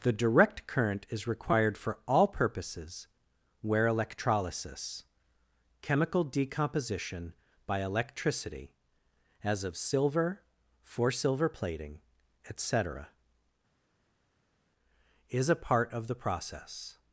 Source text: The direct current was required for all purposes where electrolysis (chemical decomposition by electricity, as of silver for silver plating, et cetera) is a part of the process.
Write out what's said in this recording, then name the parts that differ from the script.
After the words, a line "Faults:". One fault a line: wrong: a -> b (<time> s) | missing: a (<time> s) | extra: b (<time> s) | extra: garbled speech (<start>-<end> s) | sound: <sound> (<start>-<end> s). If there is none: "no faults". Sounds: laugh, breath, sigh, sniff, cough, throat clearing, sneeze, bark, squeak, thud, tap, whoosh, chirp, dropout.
The direct current is required for all purposes where electrolysis (chemical decomposition by electricity, as of silver for silver plating, et cetera) is a part of the process.
Faults:
wrong: was -> is (1.1 s)